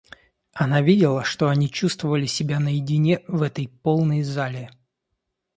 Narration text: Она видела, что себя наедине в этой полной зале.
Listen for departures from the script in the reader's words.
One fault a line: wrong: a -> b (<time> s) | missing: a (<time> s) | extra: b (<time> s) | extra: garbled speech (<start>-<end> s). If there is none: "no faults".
extra: они чувствовали (1.5 s)